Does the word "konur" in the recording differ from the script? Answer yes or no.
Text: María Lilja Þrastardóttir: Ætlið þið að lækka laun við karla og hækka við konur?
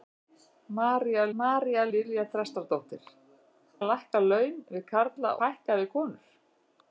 no